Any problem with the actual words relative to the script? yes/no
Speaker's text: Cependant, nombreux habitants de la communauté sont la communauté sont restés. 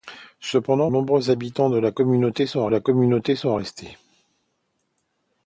no